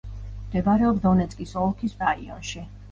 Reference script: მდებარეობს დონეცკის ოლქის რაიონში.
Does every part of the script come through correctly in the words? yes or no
yes